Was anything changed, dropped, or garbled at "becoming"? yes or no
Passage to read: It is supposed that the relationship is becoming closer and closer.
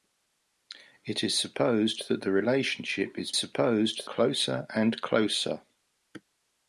yes